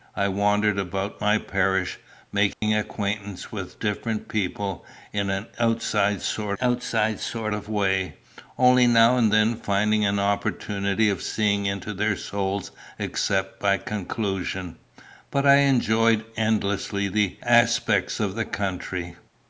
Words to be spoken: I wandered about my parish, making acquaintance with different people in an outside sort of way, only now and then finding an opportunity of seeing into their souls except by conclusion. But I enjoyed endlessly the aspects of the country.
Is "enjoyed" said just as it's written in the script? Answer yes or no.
yes